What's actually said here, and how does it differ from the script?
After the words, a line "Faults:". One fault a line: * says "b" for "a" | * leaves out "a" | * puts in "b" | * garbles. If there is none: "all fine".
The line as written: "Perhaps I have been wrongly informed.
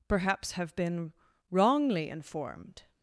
"Perhaps have been wrongly informed.
Faults:
* leaves out "I"